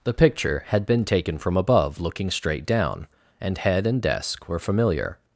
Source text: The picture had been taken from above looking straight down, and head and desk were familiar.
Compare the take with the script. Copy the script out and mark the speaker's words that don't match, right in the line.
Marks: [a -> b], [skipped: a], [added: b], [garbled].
The picture had been taken from above looking straight down, and head and desk were familiar.